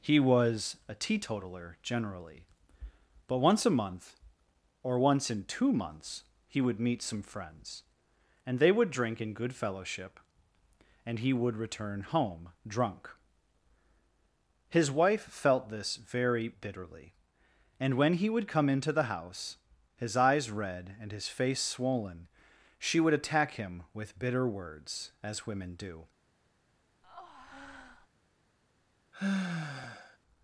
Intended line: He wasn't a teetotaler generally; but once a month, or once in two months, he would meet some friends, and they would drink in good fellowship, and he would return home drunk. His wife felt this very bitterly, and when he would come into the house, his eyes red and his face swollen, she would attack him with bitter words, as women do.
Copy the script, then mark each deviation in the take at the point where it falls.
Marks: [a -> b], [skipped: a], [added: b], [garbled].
He [wasn't -> was] a teetotaler generally; but once a month, or once in two months, he would meet some friends, and they would drink in good fellowship, and he would return home drunk. His wife felt this very bitterly, and when he would come into the house, his eyes red and his face swollen, she would attack him with bitter words, as women do.